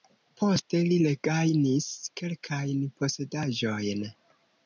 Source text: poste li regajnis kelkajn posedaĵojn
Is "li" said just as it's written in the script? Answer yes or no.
yes